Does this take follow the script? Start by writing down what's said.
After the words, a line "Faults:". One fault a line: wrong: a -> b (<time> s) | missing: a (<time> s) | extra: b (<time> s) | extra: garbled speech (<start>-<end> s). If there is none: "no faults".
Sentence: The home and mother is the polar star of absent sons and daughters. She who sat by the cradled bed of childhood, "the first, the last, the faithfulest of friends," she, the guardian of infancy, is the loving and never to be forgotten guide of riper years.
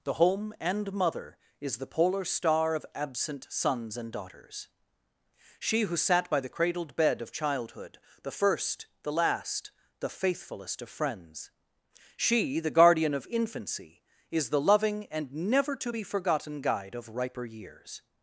The home and mother is the polar star of absent sons and daughters. She who sat by the cradled bed of childhood, "the first, the last, the faithfulest of friends," she, the guardian of infancy, is the loving and never to be forgotten guide of riper years.
Faults:
no faults